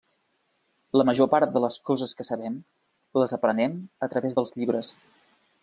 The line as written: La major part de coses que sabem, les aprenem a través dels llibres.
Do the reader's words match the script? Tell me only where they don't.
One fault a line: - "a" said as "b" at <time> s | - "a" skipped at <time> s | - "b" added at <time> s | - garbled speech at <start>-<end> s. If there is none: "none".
- "les" added at 1.6 s